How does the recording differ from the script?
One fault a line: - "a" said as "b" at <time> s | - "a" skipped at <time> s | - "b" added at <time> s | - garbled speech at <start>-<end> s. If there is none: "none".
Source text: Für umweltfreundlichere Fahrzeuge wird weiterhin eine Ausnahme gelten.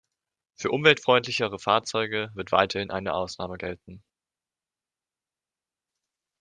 none